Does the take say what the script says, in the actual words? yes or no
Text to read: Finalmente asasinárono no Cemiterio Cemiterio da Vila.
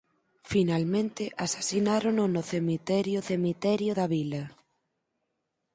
yes